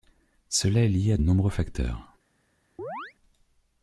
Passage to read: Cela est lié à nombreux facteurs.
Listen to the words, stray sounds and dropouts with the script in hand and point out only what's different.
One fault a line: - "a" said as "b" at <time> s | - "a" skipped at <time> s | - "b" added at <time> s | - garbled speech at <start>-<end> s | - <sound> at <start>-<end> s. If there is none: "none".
- chirp at 2.8-3.1 s